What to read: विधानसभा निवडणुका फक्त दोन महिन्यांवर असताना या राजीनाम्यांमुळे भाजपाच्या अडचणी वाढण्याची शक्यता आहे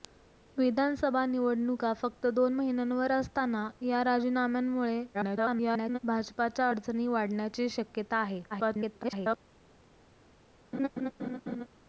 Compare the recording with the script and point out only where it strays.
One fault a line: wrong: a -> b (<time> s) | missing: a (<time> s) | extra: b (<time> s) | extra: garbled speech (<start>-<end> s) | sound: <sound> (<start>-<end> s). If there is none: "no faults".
extra: garbled speech (5.1-6.0 s)
extra: garbled speech (8.5-9.4 s)
sound: laugh (10.7-11.7 s)